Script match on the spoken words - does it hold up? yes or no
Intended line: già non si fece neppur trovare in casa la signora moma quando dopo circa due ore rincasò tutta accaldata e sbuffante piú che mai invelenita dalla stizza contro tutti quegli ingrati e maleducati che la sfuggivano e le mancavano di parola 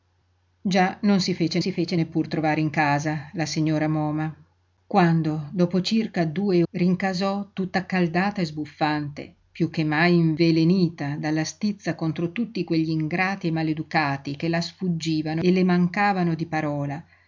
no